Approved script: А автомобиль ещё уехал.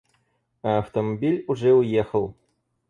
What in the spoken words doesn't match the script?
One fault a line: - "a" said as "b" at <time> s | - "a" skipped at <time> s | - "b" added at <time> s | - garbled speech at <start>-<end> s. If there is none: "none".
- "ещё" said as "уже" at 1.5 s